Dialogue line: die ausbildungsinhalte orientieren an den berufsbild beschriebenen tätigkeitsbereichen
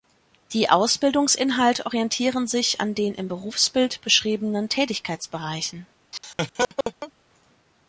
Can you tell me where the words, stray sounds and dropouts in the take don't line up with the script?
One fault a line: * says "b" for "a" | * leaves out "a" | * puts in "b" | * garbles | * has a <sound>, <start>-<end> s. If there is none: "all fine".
* puts in "sich"
* puts in "im"
* has a laugh, 6.1-7.1 s